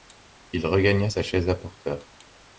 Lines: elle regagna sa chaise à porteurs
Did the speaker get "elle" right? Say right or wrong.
wrong